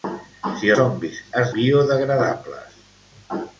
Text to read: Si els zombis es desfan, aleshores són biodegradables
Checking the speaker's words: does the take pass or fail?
fail